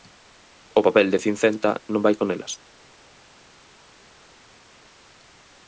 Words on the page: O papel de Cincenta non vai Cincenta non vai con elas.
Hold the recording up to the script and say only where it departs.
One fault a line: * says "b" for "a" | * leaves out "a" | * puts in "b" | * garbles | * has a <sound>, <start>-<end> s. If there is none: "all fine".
* leaves out "Cincenta non vai"